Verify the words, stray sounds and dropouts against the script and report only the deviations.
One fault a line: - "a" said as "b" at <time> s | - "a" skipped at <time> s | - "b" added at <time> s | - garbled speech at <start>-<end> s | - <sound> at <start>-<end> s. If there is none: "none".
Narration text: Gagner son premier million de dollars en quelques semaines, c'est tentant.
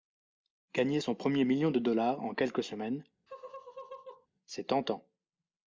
- laugh at 3.3-4.3 s